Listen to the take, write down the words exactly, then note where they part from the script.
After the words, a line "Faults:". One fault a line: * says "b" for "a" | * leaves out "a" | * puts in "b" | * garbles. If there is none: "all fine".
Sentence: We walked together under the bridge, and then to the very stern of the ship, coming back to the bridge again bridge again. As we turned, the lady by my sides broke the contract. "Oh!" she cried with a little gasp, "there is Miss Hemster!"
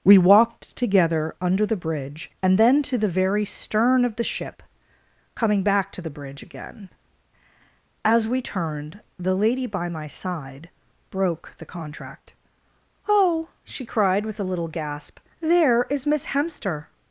We walked together under the bridge, and then to the very stern of the ship, coming back to the bridge again. As we turned, the lady by my side broke the contract. "Oh!" she cried with a little gasp, "there is Miss Hemster!"
Faults:
* leaves out "bridge again"
* says "side" for "sides"